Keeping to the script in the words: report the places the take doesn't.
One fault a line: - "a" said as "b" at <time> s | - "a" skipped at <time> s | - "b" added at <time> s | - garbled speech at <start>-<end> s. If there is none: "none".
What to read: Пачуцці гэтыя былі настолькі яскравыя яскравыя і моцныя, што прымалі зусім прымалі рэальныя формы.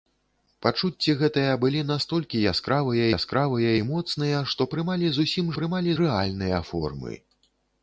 none